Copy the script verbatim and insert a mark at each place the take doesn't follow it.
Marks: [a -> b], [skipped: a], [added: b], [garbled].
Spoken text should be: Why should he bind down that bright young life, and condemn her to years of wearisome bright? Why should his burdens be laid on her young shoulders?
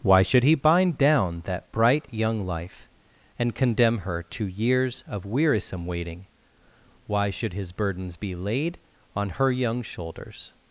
Why should he bind down that bright young life, and condemn her to years of wearisome [bright? -> waiting] Why should his burdens be laid on her young shoulders?